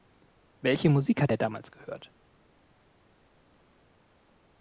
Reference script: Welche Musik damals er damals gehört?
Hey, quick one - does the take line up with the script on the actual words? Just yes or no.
no